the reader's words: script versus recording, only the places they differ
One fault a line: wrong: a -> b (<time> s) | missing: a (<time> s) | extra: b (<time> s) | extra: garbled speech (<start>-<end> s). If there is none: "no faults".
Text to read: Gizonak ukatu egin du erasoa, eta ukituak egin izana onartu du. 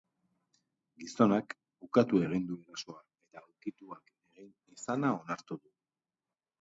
no faults